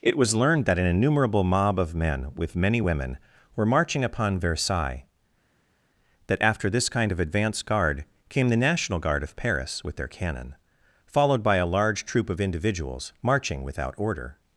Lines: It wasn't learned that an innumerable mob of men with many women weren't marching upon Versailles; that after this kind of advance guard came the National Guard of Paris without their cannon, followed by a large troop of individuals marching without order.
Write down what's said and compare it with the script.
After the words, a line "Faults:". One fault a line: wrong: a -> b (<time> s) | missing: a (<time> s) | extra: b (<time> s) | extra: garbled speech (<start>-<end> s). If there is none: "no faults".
It was learned that an innumerable mob of men with many women were marching upon Versailles; that after this kind of advance guard came the National Guard of Paris with their cannon, followed by a large troop of individuals marching without order.
Faults:
wrong: wasn't -> was (0.2 s)
wrong: weren't -> were (3.5 s)
wrong: without -> with (9.8 s)